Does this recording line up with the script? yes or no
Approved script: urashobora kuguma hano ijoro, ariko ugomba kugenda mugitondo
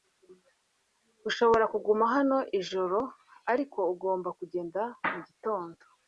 yes